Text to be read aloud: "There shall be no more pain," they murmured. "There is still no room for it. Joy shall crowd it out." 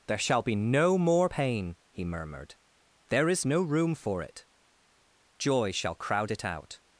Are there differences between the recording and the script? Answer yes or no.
yes